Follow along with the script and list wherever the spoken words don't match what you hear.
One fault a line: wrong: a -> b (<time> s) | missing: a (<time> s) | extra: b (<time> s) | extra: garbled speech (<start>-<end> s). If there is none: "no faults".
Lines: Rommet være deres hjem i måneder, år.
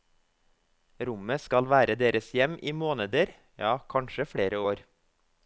extra: skal (1.4 s)
extra: ja kanskje flere (3.6 s)